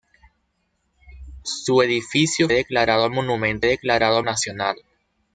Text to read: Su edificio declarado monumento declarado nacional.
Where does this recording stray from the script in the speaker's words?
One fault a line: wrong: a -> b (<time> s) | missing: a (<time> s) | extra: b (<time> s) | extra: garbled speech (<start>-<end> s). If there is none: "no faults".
no faults